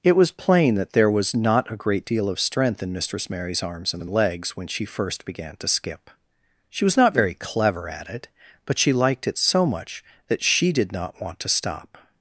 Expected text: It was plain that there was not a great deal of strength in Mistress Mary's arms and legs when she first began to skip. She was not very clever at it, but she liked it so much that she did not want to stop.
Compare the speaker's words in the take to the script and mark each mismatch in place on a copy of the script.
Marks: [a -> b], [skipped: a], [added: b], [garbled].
It was plain that there was not a great deal of strength in Mistress Mary's arms and [added: and] legs when she first began to skip. She was not very clever at it, but she liked it so much that she did not want to stop.